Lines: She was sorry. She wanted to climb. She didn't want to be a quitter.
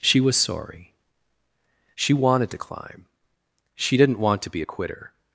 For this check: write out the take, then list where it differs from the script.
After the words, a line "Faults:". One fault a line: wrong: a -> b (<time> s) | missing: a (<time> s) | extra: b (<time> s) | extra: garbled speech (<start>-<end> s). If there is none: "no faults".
She was sorry. She wanted to climb. She didn't want to be a quitter.
Faults:
no faults